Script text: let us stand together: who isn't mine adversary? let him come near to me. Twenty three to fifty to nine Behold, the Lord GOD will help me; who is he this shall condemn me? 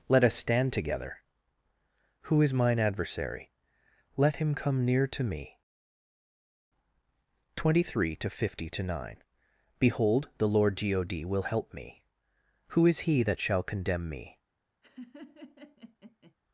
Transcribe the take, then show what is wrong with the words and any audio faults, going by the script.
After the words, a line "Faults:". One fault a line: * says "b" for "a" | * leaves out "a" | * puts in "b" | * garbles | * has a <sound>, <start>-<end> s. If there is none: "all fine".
let us stand together: who is mine adversary? let him come near to me. Twenty three to fifty to nine Behold, the Lord GOD will help me; who is he that shall condemn me?
Faults:
* says "is" for "isn't"
* says "that" for "this"
* has a laugh, 14.8-16.3 s